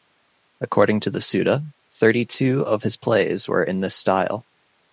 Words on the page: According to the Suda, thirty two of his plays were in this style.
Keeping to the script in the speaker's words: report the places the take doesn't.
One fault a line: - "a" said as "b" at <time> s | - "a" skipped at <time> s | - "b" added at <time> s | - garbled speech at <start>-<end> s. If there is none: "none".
none